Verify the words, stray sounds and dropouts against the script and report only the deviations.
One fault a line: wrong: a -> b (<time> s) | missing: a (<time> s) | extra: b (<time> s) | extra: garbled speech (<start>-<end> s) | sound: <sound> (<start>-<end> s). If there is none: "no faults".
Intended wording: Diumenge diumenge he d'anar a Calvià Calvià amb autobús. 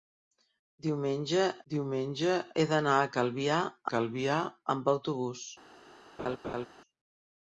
sound: laugh (6.2-6.7 s)